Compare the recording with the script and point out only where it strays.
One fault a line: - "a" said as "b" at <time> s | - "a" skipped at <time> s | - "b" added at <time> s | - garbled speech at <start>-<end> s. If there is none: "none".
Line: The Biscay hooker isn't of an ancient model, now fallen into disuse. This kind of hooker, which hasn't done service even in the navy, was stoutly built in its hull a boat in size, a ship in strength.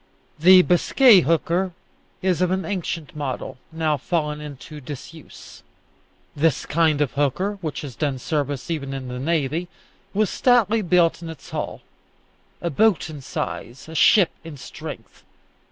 - "isn't" said as "is" at 2.2 s
- "hasn't" said as "has" at 7.8 s